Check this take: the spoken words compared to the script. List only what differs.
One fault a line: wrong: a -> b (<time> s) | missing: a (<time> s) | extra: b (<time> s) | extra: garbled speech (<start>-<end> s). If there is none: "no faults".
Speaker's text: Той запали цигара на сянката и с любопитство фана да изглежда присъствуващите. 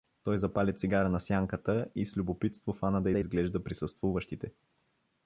extra: да (3.1 s)